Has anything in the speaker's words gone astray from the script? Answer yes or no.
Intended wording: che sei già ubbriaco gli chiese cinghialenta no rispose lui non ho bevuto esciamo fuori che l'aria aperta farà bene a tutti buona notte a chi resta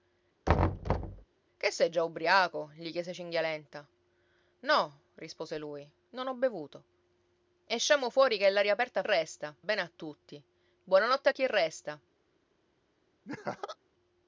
yes